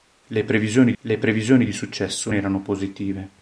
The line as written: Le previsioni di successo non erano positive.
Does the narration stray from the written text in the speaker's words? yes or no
yes